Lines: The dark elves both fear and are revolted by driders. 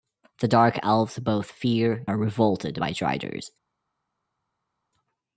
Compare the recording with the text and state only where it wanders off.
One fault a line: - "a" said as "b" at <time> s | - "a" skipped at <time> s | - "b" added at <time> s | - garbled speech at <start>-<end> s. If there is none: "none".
- "and" skipped at 2.1 s